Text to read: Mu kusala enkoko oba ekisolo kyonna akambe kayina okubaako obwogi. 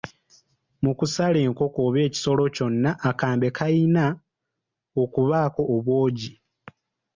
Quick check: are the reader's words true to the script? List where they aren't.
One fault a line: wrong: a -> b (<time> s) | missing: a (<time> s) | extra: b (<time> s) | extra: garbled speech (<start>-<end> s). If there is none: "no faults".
no faults